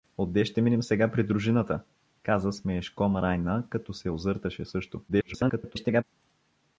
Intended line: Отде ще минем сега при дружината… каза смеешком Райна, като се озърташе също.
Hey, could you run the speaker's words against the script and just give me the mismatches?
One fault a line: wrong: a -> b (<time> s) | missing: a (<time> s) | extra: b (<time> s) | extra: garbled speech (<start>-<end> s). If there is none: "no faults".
extra: garbled speech (5.1-6.0 s)